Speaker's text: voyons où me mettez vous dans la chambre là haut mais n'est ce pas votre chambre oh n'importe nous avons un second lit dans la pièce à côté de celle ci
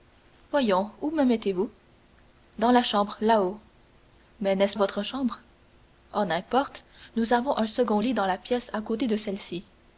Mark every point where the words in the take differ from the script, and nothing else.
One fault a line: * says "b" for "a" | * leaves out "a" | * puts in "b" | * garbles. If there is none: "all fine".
* leaves out "pas"